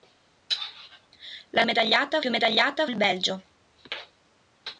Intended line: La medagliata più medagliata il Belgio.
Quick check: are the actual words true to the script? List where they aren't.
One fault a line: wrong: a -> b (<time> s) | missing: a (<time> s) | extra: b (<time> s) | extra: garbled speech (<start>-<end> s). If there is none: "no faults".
no faults